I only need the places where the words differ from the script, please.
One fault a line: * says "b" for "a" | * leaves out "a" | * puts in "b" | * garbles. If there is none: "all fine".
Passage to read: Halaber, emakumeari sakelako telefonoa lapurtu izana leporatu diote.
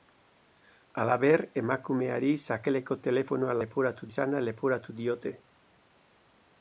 * says "leporatu" for "lapurtu"